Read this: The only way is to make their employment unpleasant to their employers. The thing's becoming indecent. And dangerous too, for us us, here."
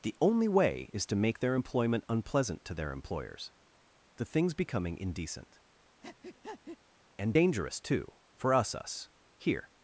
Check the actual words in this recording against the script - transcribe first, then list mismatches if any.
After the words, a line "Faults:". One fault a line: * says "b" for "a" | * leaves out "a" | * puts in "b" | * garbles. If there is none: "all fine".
The only way is to make their employment unpleasant to their employers. The thing's becoming indecent. And dangerous too, for us us, here."
Faults:
all fine